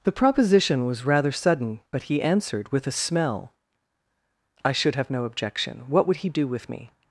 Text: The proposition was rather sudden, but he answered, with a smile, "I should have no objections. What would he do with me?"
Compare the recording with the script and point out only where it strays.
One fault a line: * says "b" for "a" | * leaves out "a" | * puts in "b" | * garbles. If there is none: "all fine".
* says "smell" for "smile"
* says "objection" for "objections"